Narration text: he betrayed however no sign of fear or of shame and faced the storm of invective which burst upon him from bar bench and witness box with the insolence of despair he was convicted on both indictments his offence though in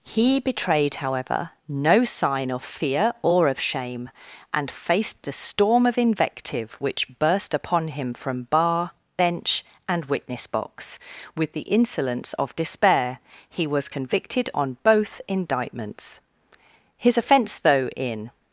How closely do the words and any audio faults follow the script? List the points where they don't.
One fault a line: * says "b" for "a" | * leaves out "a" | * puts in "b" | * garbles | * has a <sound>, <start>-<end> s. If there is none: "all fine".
all fine